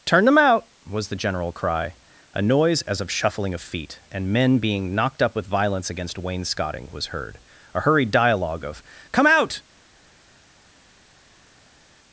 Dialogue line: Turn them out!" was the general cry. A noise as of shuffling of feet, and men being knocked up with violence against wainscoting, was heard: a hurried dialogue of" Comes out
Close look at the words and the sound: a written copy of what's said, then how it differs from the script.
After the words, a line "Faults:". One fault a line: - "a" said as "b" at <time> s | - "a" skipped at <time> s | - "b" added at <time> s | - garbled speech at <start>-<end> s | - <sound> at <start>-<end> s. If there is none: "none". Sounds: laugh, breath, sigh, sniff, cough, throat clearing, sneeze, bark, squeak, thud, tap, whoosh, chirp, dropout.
Turn them out!" was the general cry. A noise as of shuffling of feet, and men being knocked up with violence against wainscoting, was heard: a hurried dialogue of" Come out
Faults:
- "Comes" said as "Come" at 9.1 s